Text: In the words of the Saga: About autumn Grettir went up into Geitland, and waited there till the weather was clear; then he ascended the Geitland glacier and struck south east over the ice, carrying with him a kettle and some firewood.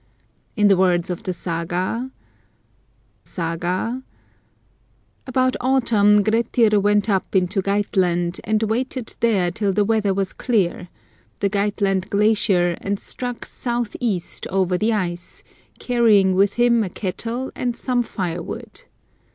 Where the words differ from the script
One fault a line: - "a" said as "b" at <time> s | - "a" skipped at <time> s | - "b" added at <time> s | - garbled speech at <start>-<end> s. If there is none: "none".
- "Saga" added at 3.2 s
- "then he ascended" skipped at 10.9 s